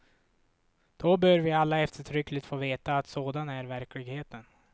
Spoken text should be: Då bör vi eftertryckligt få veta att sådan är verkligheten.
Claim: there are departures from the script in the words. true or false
true